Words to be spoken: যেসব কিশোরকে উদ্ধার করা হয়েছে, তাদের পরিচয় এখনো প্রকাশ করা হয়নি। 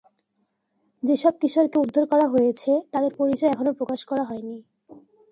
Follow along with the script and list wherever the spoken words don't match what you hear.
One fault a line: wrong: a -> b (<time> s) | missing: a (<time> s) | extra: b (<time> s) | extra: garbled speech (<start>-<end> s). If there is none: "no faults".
no faults